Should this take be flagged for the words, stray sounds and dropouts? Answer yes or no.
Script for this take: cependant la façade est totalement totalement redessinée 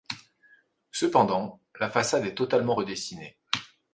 yes